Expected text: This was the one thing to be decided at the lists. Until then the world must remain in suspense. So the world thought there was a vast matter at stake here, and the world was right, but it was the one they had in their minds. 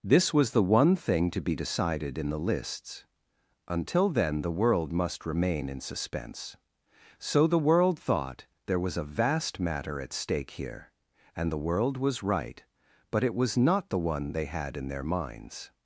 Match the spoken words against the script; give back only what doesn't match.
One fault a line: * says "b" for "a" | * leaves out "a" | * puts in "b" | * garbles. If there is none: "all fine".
* says "in" for "at"
* puts in "not"